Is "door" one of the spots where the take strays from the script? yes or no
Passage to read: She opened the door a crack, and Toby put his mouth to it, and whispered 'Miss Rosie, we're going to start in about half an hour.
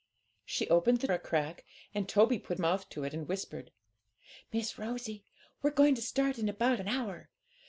yes